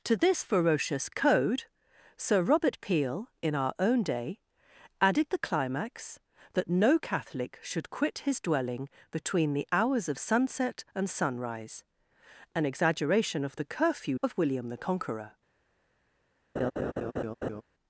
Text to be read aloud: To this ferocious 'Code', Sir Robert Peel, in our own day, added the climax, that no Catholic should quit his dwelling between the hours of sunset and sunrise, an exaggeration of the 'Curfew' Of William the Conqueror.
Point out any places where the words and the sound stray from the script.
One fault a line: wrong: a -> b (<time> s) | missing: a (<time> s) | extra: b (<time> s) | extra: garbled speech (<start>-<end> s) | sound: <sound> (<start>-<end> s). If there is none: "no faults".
sound: laugh (16.6-17.6 s)